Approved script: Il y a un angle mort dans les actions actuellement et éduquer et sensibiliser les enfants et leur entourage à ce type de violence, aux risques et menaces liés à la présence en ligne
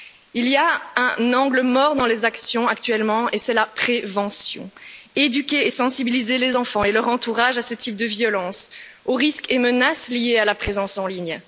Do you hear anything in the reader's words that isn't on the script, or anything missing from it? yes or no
yes